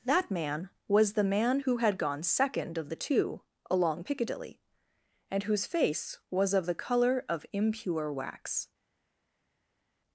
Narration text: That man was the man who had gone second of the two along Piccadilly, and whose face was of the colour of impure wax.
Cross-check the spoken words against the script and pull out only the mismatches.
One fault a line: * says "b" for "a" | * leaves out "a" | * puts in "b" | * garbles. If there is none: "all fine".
all fine